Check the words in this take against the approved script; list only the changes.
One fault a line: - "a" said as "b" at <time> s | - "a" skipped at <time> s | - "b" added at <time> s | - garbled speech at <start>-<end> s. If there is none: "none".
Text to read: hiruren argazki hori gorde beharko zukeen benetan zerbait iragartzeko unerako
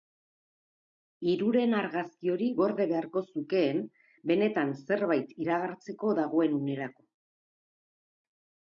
- "dagoen" added at 6.2 s